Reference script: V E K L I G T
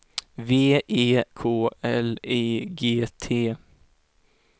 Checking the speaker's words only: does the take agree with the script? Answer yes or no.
yes